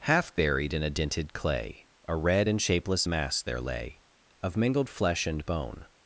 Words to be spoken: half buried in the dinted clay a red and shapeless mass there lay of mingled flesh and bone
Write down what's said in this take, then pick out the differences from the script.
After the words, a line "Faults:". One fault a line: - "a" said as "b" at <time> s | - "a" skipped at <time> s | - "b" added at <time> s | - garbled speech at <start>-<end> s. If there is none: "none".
half buried in a dinted clay a red and shapeless mass there lay of mingled flesh and bone
Faults:
- "the" said as "a" at 0.8 s